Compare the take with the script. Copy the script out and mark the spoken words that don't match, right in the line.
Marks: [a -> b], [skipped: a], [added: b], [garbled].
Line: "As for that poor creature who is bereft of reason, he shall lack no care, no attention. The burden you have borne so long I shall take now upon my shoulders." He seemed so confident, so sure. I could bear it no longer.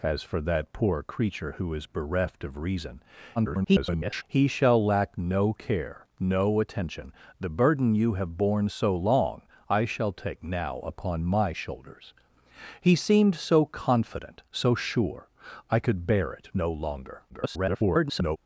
"As for that poor creature who is bereft of reason, [garbled] he shall lack no care, no attention. The burden you have borne so long I shall take now upon my shoulders." He seemed so confident, so sure. I could bear it no longer. [garbled]